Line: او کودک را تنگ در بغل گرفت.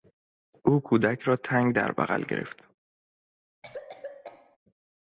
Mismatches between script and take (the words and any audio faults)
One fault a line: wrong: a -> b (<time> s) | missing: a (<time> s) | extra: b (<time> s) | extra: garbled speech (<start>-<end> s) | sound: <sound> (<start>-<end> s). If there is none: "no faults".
sound: cough (3.6-4.6 s)